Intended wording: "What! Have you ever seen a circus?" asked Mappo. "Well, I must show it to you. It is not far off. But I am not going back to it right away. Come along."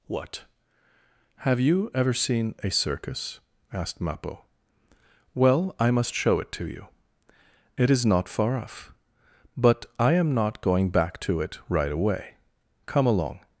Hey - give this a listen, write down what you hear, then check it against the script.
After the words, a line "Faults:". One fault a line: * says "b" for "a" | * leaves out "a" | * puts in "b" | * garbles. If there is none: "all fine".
"What! Have you ever seen a circus?" asked Mappo. "Well, I must show it to you. It is not far off. But I am not going back to it right away. Come along."
Faults:
all fine